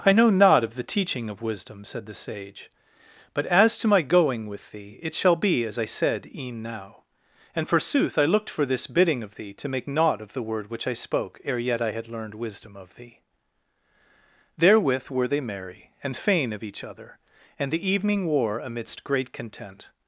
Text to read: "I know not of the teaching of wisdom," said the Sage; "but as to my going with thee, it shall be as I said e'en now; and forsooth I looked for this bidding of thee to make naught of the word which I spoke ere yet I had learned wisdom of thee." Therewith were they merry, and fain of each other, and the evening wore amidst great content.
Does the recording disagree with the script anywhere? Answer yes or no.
no